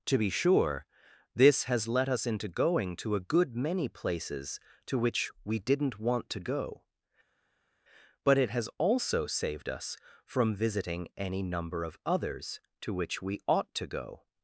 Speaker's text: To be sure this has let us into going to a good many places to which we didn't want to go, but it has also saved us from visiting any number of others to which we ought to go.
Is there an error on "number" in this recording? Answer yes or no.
no